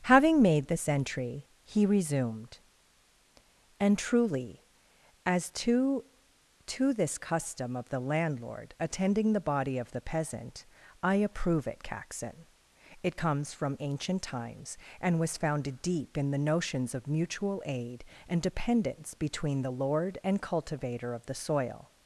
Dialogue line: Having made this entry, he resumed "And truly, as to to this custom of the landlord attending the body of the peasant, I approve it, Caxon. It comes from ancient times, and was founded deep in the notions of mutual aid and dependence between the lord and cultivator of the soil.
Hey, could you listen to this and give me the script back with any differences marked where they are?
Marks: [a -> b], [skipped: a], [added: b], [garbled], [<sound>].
Having made this entry, he resumed "And truly, as to to this custom of the landlord attending the body of the peasant, I approve it, Caxon. It comes from ancient times, and was founded deep in the notions of mutual aid and dependence between the lord and cultivator of the soil.